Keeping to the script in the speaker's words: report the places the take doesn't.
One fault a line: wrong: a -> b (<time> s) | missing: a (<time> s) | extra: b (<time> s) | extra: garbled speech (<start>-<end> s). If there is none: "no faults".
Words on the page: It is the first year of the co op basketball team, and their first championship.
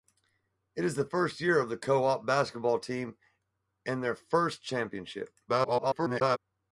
extra: garbled speech (5.5-6.4 s)